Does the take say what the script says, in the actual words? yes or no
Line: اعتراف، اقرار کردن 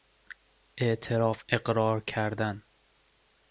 yes